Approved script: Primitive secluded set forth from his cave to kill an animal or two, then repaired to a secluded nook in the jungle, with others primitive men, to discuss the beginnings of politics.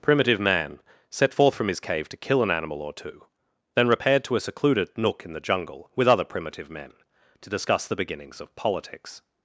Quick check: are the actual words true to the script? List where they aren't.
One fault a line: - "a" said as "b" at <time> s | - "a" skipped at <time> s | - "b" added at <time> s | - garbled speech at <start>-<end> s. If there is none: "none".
- "secluded" said as "man" at 0.4 s
- "others" said as "other" at 6.1 s